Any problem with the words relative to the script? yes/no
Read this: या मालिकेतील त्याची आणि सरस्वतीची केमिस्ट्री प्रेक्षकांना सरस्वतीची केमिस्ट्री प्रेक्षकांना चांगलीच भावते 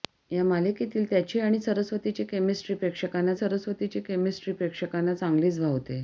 no